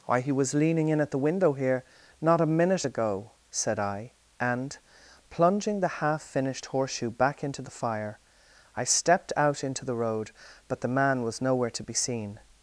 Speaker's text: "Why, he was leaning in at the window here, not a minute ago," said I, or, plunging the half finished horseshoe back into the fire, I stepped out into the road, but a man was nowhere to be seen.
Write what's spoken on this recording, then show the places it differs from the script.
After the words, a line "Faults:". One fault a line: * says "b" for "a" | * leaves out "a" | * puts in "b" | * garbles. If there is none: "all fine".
"Why, he was leaning in at the window here, not a minute ago," said I, and, plunging the half finished horseshoe back into the fire, I stepped out into the road, but the man was nowhere to be seen.
Faults:
* says "and" for "or"
* says "the" for "a"